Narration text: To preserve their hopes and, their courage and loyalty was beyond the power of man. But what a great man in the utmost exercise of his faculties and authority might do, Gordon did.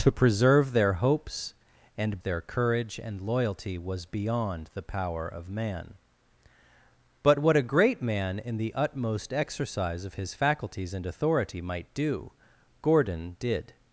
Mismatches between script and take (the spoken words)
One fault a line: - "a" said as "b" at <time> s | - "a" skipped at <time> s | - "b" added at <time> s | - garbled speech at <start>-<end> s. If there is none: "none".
none